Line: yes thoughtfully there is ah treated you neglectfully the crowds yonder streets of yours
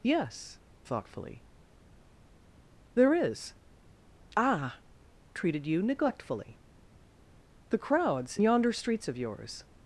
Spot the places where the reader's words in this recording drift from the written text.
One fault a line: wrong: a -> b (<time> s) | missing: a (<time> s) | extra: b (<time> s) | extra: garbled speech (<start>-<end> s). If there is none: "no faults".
no faults